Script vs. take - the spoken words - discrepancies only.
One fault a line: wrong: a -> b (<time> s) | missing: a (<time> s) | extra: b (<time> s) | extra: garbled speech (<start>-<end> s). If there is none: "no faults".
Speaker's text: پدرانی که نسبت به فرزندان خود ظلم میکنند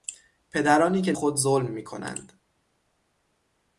missing: نسبت به فرزندان (1.1 s)